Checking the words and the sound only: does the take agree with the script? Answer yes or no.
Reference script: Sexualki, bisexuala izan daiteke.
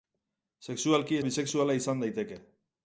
yes